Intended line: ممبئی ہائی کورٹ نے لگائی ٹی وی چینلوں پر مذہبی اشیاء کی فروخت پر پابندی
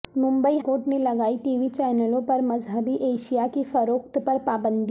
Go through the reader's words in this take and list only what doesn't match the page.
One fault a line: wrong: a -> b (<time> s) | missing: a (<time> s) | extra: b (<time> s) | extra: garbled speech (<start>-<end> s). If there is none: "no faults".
missing: ہائی (0.6 s)